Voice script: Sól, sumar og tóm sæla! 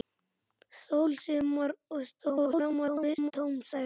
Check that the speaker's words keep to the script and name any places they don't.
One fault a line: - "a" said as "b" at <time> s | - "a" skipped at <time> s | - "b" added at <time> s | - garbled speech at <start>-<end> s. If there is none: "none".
- garbled speech at 2.2-3.3 s